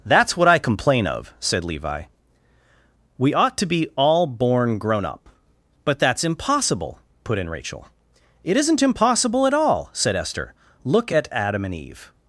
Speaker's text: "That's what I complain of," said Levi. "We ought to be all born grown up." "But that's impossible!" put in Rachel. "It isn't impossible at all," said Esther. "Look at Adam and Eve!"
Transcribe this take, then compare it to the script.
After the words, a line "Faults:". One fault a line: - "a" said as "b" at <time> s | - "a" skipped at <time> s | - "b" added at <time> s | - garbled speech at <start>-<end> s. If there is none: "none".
"That's what I complain of," said Levi. "We ought to be all born grown up." "But that's impossible!" put in Rachel. "It isn't impossible at all," said Esther. "Look at Adam and Eve!"
Faults:
none